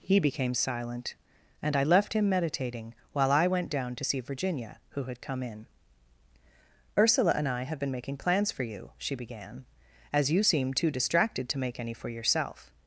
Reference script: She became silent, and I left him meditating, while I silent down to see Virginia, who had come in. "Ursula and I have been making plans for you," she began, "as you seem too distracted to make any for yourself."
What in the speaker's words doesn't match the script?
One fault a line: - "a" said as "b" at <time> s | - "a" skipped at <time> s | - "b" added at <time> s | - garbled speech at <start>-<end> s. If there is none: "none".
- "She" said as "He" at 0.0 s
- "silent" said as "went" at 3.5 s